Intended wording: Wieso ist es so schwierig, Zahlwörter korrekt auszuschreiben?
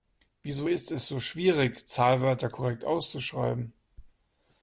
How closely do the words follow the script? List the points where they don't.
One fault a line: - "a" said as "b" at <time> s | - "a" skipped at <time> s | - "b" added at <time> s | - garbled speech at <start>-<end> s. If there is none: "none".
none